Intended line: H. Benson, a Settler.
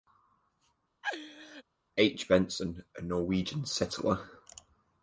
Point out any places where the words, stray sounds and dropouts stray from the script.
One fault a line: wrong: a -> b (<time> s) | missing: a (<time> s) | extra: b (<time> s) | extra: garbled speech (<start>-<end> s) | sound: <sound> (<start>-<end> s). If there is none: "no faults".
sound: laugh (1.0-1.6 s)
extra: Norwegian (3.0 s)